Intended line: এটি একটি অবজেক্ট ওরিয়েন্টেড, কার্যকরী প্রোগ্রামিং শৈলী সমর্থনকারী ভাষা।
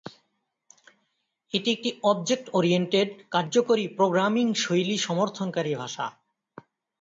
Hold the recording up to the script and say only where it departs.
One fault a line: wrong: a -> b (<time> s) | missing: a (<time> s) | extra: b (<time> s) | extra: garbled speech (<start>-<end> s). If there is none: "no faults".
no faults